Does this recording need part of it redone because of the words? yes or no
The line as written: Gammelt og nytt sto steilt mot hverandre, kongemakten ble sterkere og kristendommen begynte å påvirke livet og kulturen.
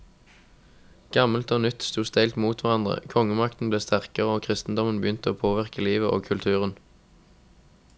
no